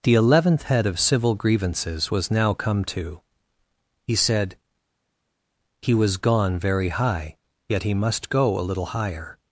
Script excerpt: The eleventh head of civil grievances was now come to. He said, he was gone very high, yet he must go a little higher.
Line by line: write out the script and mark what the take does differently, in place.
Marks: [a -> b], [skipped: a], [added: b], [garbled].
The eleventh head of civil grievances was now come to. He said, he was gone very high, yet he must go a little higher.